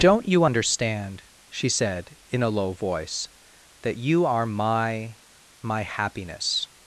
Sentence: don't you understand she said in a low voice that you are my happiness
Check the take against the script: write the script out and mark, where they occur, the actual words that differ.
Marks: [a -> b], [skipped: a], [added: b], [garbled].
don't you understand she said in a low voice that you are my [added: my] happiness